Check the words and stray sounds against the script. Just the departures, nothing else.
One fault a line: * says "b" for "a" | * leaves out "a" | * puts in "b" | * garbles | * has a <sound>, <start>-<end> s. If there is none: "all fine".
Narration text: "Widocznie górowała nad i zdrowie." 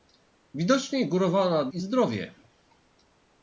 all fine